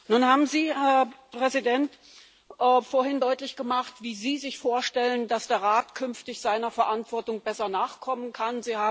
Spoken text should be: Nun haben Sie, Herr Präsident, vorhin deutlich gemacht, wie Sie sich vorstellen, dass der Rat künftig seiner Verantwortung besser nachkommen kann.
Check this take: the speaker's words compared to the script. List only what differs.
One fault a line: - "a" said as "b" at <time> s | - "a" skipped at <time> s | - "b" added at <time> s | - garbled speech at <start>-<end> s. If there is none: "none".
none